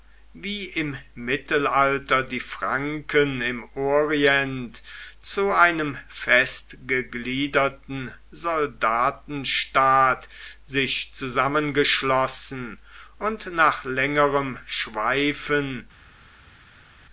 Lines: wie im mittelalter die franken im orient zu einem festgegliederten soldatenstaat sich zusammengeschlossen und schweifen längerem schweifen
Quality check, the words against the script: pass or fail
fail